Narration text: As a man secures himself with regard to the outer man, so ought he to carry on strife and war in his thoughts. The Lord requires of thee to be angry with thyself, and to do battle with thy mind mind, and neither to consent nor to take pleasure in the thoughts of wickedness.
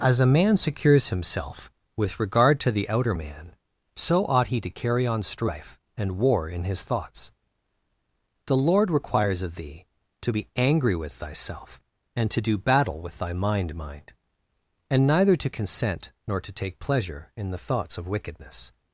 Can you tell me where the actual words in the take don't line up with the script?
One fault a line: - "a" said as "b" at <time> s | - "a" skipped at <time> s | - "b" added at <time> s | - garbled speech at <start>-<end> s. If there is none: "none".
none